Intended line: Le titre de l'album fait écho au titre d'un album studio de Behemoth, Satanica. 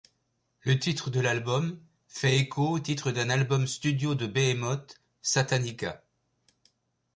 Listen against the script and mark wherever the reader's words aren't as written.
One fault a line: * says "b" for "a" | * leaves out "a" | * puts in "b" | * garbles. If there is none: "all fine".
all fine